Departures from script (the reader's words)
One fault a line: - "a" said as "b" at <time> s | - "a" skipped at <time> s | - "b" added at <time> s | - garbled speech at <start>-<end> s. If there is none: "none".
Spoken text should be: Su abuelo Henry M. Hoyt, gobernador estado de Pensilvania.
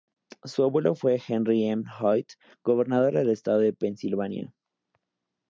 - "fue" added at 0.9 s
- "del" added at 3.1 s